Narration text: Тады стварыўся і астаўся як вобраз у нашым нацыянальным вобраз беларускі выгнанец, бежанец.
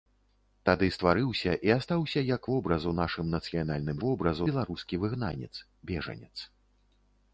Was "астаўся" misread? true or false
false